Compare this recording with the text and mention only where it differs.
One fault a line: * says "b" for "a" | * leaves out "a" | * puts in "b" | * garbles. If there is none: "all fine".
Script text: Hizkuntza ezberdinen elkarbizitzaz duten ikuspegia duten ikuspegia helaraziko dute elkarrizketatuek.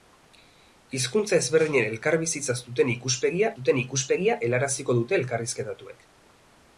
all fine